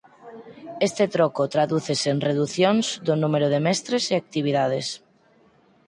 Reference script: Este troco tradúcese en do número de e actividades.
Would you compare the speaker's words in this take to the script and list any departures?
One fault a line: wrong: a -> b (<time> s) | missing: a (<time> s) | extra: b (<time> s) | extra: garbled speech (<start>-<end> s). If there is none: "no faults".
extra: reducións (2.3 s)
extra: mestres (3.7 s)